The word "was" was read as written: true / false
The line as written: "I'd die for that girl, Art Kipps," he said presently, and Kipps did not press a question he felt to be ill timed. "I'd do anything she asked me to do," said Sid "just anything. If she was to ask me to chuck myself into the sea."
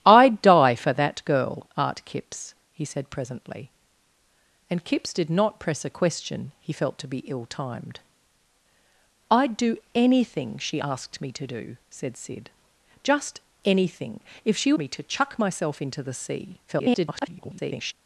false